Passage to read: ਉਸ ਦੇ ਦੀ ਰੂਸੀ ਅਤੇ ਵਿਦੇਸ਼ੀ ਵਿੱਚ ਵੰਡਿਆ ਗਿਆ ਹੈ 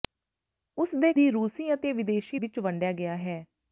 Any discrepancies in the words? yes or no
no